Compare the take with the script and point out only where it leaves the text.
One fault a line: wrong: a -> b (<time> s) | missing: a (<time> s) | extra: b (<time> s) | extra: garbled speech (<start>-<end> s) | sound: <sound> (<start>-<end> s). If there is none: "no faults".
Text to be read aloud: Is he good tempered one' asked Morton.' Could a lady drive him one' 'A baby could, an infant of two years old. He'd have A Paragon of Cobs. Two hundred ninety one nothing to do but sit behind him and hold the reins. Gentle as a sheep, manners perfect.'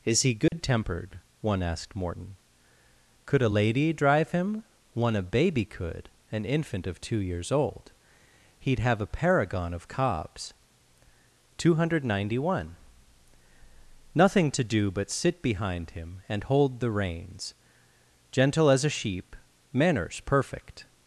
sound: dropout (0.5-0.5 s)